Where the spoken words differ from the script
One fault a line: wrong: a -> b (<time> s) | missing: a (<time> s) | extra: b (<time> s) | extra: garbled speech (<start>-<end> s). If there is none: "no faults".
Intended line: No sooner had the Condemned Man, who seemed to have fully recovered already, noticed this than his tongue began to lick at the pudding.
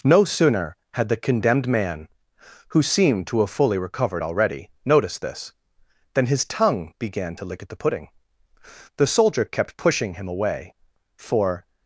extra: The Soldier kept pushing him away for (9.0 s)